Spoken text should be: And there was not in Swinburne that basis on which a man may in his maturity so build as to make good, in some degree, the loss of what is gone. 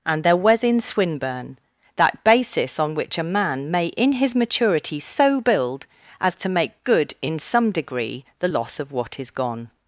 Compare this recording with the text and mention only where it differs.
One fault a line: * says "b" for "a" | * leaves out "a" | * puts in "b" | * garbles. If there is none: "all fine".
* leaves out "not"